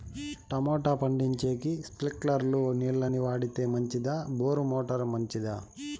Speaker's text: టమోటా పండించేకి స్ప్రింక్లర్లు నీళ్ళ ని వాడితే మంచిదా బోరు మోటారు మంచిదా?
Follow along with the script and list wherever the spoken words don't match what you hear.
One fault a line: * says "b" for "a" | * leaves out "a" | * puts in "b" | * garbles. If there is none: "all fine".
all fine